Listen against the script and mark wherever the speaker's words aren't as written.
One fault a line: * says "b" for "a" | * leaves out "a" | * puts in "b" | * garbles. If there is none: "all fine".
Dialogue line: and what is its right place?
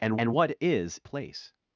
* puts in "and"
* leaves out "its right"